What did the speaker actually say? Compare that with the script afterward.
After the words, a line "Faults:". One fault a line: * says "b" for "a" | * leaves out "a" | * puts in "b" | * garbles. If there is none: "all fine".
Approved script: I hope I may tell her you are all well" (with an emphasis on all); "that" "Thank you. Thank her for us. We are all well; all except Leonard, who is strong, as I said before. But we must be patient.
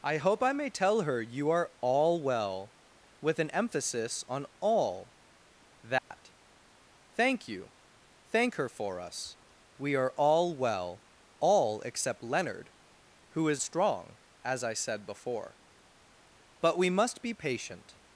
I hope I may tell her you are all well" (with an emphasis on all); "that" "Thank you. Thank her for us. We are all well; all except Leonard, who is strong, as I said before. But we must be patient.
Faults:
all fine